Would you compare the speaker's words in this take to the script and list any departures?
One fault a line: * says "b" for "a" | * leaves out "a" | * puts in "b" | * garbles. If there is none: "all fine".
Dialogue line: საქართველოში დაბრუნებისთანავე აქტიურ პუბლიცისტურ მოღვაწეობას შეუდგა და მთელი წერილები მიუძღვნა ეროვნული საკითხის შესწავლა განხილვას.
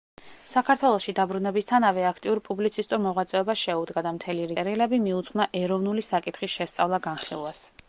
all fine